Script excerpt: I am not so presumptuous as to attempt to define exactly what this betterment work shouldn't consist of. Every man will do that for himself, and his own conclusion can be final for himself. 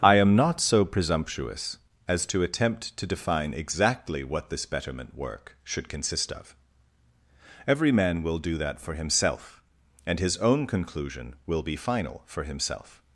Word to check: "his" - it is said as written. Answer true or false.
true